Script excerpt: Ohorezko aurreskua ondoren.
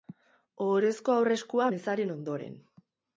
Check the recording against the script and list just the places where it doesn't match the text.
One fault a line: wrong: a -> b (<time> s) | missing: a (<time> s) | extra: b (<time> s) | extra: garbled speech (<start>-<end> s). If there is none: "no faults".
extra: mezaren (1.7 s)